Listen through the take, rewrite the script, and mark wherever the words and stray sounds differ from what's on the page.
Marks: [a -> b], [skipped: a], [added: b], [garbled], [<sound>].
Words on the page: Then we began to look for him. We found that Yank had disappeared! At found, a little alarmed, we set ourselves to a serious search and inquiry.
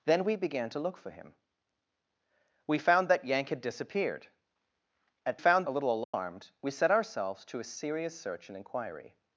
Then we began to look for him. We found that Yank had disappeared! At found, a little alarmed, [dropout] we set ourselves to a serious search and inquiry.